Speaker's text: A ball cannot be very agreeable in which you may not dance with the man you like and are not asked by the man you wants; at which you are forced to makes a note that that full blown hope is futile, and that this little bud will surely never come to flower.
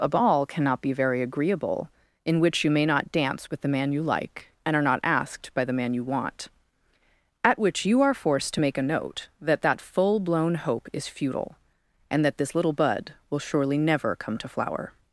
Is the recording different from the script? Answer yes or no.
yes